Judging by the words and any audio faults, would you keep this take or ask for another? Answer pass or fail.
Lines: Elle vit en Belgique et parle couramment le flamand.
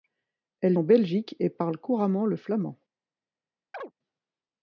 fail